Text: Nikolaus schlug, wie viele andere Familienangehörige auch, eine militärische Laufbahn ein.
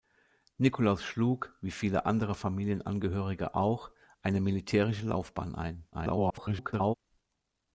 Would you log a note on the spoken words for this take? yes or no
yes